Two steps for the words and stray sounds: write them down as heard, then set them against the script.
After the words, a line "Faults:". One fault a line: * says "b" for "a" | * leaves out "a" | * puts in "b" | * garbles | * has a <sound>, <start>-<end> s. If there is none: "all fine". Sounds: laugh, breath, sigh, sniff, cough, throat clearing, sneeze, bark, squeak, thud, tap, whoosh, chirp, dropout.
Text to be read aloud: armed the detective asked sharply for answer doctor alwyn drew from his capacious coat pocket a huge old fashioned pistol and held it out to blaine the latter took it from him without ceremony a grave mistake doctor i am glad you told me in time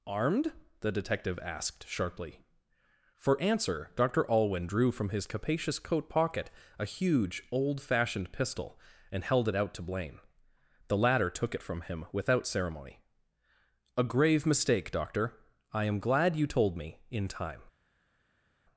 armed the detective asked sharply for answer doctor alwyn drew from his capacious coat pocket a huge old fashioned pistol and held it out to blaine the latter took it from him without ceremony a grave mistake doctor i am glad you told me in time
Faults:
all fine